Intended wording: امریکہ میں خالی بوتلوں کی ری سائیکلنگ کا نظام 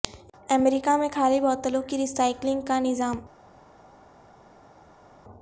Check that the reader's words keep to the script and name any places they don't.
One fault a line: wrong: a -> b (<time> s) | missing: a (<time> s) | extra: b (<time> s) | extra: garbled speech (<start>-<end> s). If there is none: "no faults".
no faults